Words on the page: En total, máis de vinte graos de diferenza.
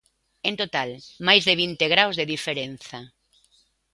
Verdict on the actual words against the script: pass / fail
pass